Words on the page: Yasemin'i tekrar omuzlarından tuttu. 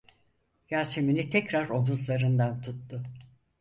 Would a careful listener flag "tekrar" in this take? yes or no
no